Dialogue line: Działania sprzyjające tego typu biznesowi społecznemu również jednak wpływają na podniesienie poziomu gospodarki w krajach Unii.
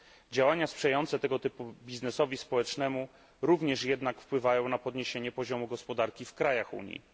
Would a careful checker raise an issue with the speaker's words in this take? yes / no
no